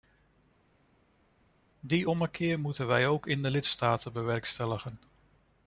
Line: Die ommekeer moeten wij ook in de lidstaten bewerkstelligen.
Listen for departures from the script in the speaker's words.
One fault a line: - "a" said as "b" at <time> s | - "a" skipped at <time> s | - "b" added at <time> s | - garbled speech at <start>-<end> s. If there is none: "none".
none